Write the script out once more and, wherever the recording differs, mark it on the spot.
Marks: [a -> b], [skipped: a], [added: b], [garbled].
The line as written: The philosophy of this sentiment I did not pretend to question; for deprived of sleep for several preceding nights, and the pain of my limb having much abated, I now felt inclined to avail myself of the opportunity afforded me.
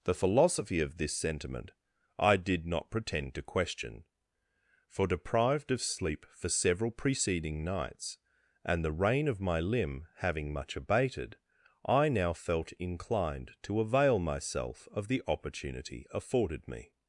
The philosophy of this sentiment I did not pretend to question; for deprived of sleep for several preceding nights, and the [pain -> rain] of my limb having much abated, I now felt inclined to avail myself of the opportunity afforded me.